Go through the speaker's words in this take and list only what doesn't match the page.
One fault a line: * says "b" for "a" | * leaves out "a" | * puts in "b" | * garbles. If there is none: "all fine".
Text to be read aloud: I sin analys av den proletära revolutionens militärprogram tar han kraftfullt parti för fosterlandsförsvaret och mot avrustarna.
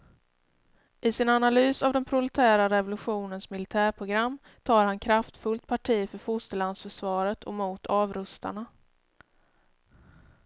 all fine